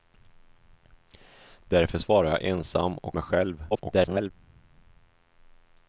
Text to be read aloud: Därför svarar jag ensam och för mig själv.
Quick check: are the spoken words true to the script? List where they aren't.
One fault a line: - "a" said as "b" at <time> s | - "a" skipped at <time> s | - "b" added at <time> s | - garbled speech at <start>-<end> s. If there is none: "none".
- "för" skipped at 3.2 s
- garbled speech at 3.7-4.3 s